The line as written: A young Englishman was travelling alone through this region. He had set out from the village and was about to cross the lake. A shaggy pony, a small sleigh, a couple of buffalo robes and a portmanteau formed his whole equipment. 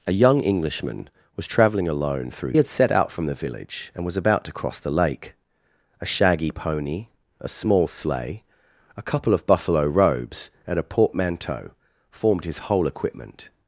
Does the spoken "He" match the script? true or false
false